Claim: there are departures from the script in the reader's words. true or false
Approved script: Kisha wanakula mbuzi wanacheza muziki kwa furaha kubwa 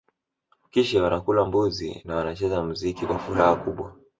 true